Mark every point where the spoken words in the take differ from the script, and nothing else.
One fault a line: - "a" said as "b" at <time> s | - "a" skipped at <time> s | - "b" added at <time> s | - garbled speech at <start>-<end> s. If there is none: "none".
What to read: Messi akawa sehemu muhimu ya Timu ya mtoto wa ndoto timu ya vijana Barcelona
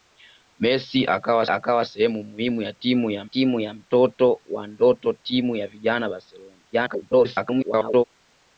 - "akawa" added at 1.5 s
- "Timu ya" added at 3.2 s
- garbled speech at 6.7-8.0 s